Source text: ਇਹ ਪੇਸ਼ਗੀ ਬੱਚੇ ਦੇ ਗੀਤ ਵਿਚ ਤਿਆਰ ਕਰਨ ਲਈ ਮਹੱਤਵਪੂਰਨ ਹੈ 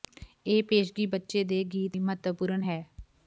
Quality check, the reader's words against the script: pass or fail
fail